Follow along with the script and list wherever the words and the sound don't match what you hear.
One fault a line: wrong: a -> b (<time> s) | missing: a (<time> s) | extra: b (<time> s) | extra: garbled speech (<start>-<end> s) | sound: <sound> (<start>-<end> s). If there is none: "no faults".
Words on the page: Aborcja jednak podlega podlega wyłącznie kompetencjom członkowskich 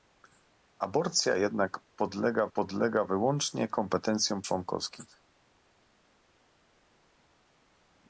no faults